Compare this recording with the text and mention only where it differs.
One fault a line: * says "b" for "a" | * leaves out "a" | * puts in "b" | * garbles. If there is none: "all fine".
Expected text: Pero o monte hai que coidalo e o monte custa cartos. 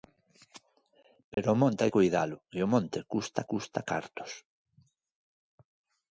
* leaves out "que"
* puts in "custa"